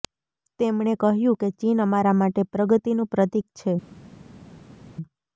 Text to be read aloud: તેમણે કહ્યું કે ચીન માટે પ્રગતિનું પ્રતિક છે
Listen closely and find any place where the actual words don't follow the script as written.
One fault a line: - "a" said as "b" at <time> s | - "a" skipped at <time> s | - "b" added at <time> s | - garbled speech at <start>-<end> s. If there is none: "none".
- "અમારા" added at 1.9 s